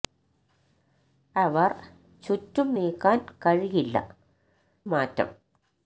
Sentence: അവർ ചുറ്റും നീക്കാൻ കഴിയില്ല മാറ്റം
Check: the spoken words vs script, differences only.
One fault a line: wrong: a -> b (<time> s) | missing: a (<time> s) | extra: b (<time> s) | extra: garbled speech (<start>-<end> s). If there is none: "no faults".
no faults